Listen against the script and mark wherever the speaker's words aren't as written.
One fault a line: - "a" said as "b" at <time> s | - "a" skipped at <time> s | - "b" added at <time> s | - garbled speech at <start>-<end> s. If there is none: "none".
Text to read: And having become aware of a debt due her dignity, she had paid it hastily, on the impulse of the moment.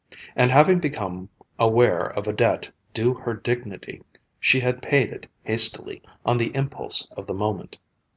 none